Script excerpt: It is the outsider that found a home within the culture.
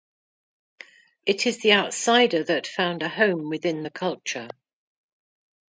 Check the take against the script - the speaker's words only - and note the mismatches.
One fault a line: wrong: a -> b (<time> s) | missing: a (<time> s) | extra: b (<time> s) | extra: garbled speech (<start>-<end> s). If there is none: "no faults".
no faults